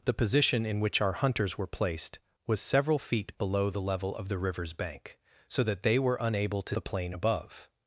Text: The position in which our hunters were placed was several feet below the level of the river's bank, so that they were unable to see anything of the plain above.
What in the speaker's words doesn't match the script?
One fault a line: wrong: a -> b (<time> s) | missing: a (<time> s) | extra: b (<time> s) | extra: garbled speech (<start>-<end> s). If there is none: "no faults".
missing: see anything of (6.8 s)